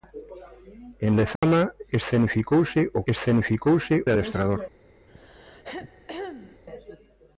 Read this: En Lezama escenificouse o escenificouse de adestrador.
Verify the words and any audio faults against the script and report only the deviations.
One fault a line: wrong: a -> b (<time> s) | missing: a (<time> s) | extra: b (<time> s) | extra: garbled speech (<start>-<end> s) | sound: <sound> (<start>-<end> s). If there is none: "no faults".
sound: dropout (1.4-1.4 s)
sound: throat clearing (5.1-6.6 s)